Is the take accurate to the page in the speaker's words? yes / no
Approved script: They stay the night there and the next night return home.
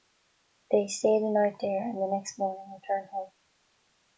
no